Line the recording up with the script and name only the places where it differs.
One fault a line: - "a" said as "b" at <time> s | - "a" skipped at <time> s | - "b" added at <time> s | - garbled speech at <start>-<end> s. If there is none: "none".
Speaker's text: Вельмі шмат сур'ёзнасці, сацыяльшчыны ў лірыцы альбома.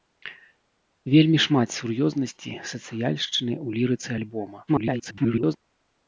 - garbled speech at 4.7-5.6 s